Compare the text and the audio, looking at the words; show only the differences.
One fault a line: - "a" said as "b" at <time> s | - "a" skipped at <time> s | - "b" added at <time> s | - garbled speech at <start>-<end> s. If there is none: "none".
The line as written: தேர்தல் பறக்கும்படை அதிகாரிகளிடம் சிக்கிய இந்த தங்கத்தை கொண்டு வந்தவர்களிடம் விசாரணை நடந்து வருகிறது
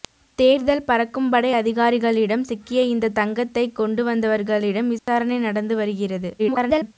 - garbled speech at 6.4-6.9 s